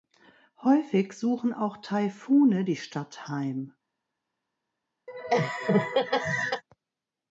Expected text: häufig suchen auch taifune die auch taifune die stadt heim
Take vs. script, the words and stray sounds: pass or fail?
fail